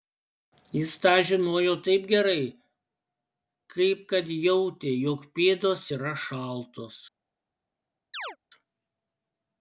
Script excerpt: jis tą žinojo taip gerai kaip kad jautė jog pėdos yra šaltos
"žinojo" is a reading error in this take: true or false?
false